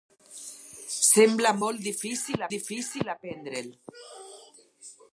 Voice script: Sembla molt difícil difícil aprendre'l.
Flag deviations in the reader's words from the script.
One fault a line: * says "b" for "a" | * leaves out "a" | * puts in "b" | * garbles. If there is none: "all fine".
all fine